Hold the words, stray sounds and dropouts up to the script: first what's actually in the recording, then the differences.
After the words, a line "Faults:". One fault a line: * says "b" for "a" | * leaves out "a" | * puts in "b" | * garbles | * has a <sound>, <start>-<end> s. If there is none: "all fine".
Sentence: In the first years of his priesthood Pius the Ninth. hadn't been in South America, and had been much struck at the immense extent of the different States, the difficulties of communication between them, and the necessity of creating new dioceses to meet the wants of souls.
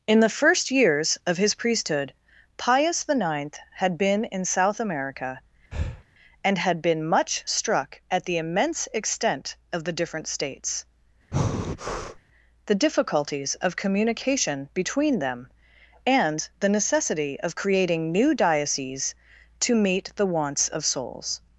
In the first years of his priesthood Pius the Ninth. had been in South America, and had been much struck at the immense extent of the different States, the difficulties of communication between them, and the necessity of creating new dioceses to meet the wants of souls.
Faults:
* says "had" for "hadn't"
* has a breath, 5.7-6.0 s
* has a breath, 11.3-12.2 s